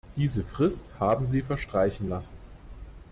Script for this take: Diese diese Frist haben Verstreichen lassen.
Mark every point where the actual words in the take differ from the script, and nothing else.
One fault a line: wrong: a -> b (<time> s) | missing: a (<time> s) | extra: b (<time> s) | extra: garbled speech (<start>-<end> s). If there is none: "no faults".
missing: diese (0.4 s)
extra: Sie (1.3 s)